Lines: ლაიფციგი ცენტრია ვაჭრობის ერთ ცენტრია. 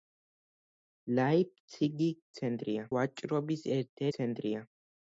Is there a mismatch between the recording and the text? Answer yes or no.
no